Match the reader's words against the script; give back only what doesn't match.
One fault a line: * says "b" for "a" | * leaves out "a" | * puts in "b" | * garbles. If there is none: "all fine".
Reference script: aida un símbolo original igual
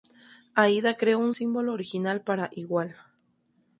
* puts in "creó"
* puts in "para"